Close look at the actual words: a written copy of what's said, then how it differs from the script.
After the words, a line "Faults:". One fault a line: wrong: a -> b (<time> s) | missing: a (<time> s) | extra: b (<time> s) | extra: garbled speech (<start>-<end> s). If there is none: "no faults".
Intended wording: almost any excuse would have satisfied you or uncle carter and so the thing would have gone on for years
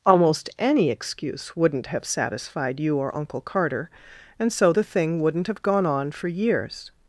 almost any excuse wouldn't have satisfied you or uncle carter and so the thing wouldn't have gone on for years
Faults:
wrong: would -> wouldn't (1.6 s)
wrong: would -> wouldn't (5.2 s)